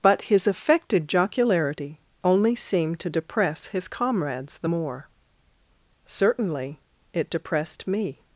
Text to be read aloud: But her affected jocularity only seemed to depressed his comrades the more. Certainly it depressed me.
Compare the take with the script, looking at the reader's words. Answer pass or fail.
fail